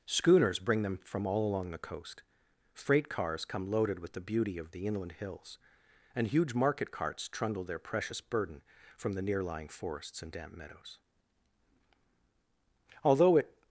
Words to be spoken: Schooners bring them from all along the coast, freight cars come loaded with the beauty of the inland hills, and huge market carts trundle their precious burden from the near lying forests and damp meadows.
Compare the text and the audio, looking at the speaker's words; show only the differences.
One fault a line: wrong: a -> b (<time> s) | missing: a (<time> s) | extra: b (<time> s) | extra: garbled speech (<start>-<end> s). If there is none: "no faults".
extra: Although it (13.0 s)